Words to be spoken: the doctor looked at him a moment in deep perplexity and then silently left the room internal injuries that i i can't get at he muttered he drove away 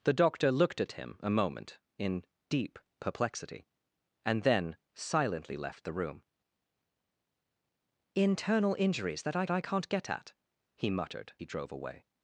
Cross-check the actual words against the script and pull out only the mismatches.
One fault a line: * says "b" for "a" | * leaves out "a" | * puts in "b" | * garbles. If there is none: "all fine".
all fine